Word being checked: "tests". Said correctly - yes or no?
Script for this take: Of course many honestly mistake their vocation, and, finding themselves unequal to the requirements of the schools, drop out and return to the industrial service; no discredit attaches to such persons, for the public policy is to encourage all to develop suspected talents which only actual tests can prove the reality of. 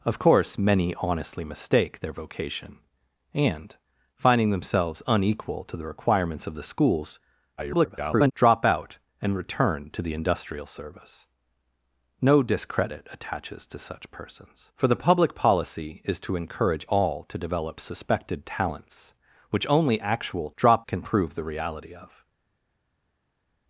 no